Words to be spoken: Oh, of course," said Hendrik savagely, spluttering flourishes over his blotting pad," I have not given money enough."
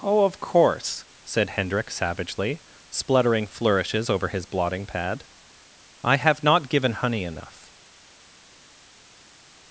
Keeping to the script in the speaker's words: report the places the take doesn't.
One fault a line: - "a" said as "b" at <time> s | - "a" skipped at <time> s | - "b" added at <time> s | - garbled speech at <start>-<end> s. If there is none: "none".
- "money" said as "honey" at 6.9 s